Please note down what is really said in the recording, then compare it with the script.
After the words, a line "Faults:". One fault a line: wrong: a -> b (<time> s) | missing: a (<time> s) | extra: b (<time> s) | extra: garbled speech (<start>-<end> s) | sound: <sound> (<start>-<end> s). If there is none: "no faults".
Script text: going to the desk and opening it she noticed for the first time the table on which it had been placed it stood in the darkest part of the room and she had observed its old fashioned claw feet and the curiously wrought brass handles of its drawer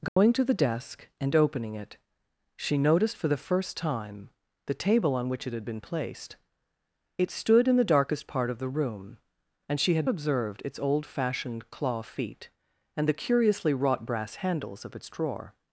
going to the desk and opening it she noticed for the first time the table on which it had been placed it stood in the darkest part of the room and she had observed its old fashioned claw feet and the curiously wrought brass handles of its drawer
Faults:
sound: dropout (0.1-0.2 s)